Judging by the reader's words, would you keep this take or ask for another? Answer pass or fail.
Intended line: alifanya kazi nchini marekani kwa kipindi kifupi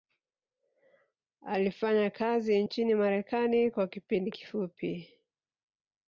pass